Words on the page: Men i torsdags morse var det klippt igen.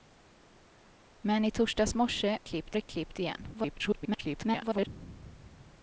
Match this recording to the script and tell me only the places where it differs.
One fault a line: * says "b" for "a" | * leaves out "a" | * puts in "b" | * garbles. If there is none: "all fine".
* says "klippt" for "var"
* garbles